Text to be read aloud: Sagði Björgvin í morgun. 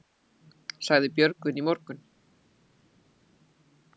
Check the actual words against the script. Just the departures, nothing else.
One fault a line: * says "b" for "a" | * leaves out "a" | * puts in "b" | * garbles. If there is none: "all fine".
all fine